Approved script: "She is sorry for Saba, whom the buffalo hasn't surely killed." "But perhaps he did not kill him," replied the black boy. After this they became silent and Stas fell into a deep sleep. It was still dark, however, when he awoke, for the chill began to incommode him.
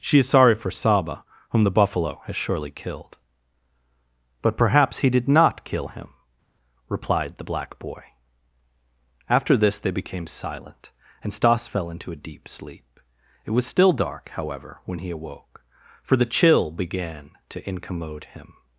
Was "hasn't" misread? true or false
true